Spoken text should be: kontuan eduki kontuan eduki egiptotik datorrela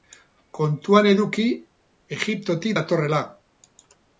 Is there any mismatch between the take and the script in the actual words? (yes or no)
yes